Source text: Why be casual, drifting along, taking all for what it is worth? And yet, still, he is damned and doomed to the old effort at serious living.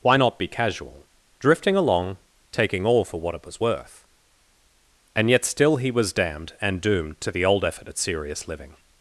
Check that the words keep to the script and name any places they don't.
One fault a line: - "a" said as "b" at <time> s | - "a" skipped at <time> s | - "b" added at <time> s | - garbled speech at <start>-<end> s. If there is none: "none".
- "not" added at 0.1 s
- "is" said as "was" at 3.4 s
- "is" said as "was" at 5.9 s